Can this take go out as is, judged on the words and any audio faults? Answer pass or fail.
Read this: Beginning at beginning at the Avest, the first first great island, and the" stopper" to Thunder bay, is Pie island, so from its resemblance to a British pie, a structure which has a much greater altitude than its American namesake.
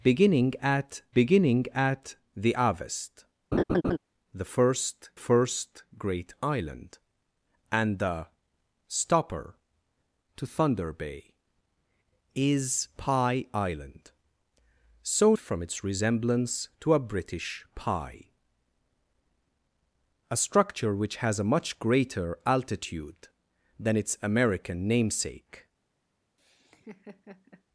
fail